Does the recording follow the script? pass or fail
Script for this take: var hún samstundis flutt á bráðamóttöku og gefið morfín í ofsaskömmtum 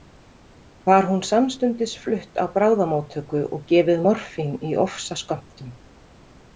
pass